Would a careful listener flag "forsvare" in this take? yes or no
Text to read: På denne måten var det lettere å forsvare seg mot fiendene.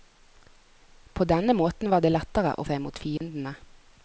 yes